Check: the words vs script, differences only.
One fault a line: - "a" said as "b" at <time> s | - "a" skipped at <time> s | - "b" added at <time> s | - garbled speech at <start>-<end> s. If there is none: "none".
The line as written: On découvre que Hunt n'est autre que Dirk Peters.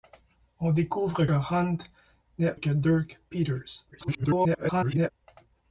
- "que" skipped at 1.2 s
- "autre" skipped at 2.6 s
- garbled speech at 3.9-5.1 s